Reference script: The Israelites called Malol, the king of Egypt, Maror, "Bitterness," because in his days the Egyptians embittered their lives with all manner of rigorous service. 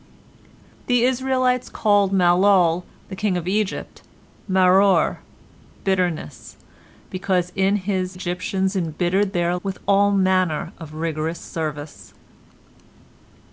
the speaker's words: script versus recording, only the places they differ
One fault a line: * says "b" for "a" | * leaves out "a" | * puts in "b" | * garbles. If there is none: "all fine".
* leaves out "days the"
* leaves out "lives"